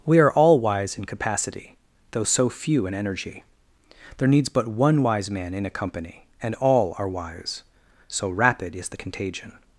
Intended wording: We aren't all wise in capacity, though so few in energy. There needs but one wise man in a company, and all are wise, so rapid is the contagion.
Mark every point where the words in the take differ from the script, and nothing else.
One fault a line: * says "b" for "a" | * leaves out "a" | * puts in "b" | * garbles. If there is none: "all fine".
* says "are" for "aren't"